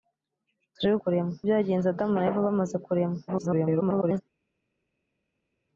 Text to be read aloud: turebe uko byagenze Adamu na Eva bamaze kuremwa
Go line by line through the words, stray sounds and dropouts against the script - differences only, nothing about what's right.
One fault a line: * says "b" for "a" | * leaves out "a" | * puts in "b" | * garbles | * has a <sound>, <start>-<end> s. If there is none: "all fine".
* says "kuremwa" for "uko"
* garbles